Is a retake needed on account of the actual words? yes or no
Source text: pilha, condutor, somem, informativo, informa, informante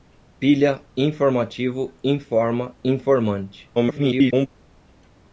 yes